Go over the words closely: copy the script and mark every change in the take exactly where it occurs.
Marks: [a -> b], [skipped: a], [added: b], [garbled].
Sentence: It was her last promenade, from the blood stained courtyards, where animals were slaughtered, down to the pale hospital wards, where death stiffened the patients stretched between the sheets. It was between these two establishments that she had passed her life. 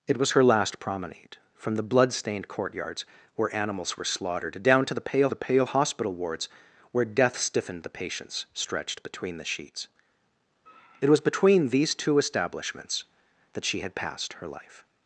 It was her last promenade, from the blood stained courtyards, where animals were slaughtered, down to the pale [added: the pale] hospital wards, where death stiffened the patients stretched between the sheets. It was between these two establishments that she had passed her life.